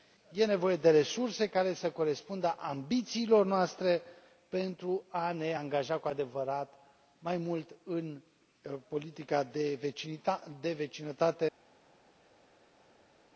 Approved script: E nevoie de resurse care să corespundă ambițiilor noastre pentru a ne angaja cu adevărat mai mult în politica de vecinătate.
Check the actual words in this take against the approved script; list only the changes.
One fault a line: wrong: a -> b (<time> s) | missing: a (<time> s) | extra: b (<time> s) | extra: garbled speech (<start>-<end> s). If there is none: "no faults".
no faults